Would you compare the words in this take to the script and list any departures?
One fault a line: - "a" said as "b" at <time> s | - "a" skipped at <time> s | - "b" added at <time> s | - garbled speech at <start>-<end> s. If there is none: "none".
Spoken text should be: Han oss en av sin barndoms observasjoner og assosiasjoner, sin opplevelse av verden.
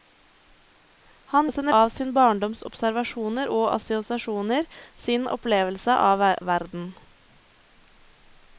none